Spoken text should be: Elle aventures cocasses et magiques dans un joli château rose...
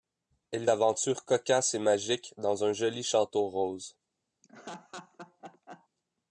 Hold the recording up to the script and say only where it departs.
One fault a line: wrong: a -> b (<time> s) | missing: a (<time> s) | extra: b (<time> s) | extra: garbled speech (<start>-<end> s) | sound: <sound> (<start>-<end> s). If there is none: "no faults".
sound: laugh (4.4-5.9 s)